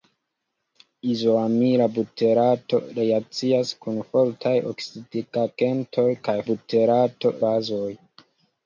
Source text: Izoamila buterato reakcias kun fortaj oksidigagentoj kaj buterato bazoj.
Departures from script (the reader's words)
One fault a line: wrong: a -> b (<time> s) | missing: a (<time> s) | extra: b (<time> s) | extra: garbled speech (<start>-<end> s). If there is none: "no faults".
no faults